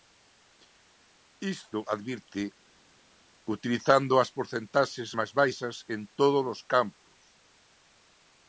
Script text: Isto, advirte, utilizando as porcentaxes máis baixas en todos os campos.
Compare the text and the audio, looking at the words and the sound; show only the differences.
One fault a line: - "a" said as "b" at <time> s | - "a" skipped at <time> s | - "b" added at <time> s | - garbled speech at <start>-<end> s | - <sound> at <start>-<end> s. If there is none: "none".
none